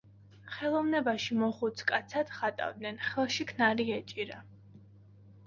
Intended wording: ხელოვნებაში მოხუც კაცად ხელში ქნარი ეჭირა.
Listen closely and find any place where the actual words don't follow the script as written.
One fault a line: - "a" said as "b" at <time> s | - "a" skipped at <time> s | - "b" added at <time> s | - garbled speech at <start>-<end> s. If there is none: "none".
- "ხატავდნენ" added at 2.4 s